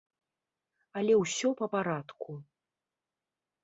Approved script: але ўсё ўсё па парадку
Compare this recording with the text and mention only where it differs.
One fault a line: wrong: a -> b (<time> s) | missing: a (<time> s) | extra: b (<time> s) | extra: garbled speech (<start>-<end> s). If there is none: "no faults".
missing: ўсё (1.5 s)